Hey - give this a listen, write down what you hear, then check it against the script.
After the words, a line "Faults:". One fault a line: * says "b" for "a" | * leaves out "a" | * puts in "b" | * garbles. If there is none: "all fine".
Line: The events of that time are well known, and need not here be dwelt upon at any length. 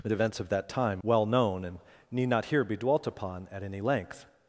The events of that time well known, and need not here be dwelt upon at any length.
Faults:
* leaves out "are"